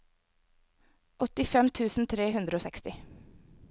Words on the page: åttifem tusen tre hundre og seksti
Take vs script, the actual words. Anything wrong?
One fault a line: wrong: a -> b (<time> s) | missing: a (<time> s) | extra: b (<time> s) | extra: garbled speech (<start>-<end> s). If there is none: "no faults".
no faults